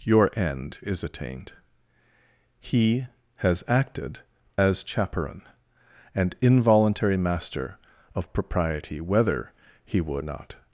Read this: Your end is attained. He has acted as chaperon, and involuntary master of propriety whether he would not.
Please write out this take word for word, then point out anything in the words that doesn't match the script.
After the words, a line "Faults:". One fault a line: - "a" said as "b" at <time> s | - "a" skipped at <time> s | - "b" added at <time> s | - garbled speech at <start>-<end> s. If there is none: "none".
Your end is attained. He has acted as chaperon, and involuntary master of propriety whether he would not.
Faults:
none